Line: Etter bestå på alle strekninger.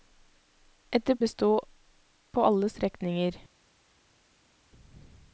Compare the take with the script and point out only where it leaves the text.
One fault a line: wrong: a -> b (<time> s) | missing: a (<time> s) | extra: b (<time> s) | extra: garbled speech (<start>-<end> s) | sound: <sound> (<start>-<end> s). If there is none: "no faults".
no faults